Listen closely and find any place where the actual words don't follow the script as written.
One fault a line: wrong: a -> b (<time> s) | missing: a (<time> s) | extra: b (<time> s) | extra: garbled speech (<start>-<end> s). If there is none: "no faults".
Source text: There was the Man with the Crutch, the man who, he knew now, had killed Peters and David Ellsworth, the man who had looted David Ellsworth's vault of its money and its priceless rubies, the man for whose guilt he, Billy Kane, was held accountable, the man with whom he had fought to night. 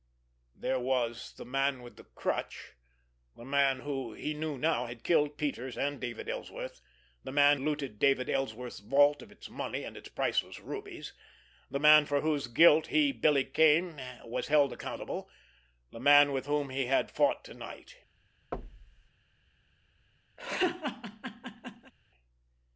missing: who had (7.6 s)